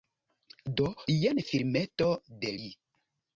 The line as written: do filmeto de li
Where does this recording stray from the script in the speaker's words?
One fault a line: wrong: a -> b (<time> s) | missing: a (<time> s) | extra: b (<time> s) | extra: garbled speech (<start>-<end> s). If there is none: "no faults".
extra: jen (1.2 s)